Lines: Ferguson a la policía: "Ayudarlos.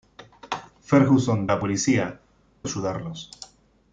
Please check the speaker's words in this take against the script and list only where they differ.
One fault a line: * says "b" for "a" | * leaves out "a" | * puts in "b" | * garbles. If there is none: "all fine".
all fine